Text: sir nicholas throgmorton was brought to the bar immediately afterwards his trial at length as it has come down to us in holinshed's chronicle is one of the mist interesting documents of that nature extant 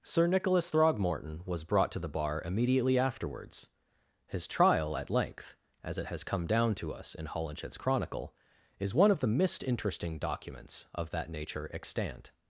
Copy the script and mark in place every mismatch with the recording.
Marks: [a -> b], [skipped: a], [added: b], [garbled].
sir nicholas throgmorton was brought to the bar immediately afterwards his trial at length as it has come down to us in holinshed's chronicle is one of the mist interesting documents of that nature extant